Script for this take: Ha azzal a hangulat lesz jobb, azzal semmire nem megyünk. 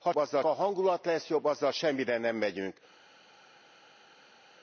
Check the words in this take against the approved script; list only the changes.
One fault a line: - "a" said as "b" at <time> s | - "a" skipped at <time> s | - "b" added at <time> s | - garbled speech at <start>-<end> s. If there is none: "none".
none